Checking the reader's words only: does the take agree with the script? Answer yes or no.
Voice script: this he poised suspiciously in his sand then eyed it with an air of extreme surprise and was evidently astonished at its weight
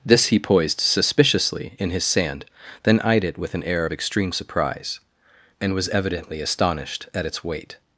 yes